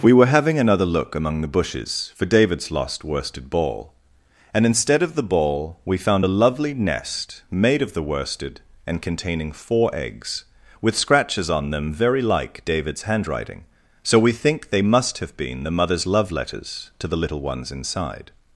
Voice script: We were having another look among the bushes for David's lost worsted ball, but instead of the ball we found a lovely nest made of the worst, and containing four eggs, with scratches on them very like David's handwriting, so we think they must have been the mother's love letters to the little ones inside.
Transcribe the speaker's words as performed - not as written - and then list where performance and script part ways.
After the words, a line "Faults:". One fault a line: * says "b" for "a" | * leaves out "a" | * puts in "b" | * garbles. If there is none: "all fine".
We were having another look among the bushes for David's lost worsted ball, and instead of the ball we found a lovely nest made of the worsted, and containing four eggs, with scratches on them very like David's handwriting, so we think they must have been the mother's love letters to the little ones inside.
Faults:
* says "and" for "but"
* says "worsted" for "worst"